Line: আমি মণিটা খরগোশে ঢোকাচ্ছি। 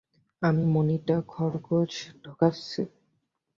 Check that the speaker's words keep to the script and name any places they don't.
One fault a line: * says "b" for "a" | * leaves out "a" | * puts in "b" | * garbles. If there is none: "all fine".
all fine